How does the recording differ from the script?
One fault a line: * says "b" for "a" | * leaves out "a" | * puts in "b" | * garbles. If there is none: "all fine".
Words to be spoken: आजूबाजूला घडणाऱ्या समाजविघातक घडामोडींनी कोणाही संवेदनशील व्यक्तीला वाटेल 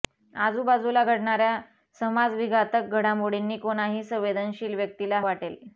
all fine